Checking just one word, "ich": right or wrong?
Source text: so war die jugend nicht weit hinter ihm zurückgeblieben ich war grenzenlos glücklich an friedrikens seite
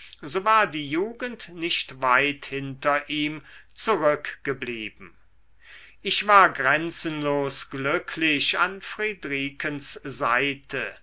right